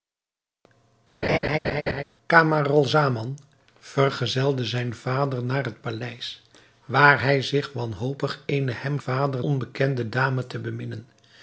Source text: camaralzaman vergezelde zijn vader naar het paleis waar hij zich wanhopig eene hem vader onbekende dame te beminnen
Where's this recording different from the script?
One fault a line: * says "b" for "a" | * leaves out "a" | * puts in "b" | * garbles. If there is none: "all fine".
all fine